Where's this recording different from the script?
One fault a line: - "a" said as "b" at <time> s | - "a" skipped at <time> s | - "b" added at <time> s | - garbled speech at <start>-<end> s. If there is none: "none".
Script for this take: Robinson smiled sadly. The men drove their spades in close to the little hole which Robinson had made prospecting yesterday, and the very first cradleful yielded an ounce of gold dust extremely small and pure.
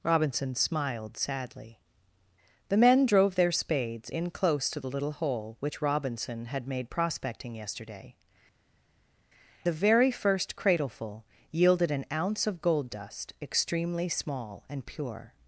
- "and" skipped at 8.1 s